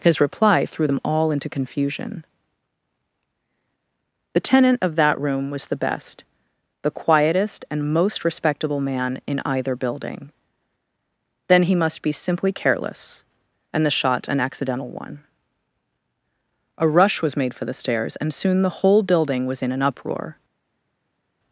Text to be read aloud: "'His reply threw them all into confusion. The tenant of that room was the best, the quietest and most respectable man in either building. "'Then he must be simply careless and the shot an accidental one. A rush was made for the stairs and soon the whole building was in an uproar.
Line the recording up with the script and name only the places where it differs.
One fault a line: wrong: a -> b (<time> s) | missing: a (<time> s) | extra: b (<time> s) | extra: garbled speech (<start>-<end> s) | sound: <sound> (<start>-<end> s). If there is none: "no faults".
no faults